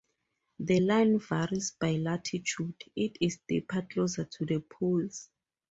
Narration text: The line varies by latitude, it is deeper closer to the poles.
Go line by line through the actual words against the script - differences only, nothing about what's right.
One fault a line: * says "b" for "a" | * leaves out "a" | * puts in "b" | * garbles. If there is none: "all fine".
all fine